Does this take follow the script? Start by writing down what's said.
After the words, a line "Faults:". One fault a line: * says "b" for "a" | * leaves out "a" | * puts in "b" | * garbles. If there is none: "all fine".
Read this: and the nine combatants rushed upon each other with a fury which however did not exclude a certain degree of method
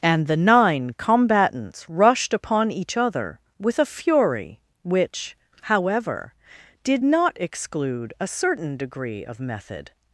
and the nine combatants rushed upon each other with a fury which however did not exclude a certain degree of method
Faults:
all fine